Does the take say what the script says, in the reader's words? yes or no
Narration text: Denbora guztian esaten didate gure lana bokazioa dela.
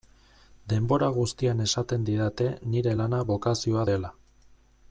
no